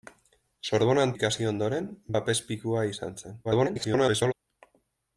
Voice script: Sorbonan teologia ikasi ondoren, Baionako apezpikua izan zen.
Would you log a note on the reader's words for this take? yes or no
yes